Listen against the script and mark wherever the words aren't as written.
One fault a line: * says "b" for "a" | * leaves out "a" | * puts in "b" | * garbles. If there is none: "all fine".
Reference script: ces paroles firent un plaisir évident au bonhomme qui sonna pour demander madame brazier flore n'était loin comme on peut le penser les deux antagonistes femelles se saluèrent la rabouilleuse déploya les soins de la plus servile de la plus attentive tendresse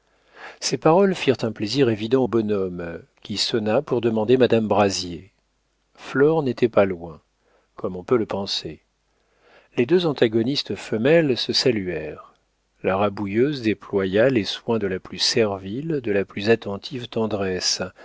* puts in "pas"